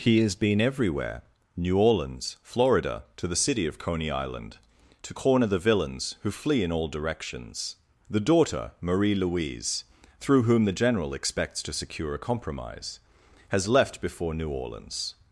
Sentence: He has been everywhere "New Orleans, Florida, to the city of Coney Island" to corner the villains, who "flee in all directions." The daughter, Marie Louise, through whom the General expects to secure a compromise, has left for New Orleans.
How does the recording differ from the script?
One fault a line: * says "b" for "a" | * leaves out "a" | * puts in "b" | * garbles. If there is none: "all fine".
* says "before" for "for"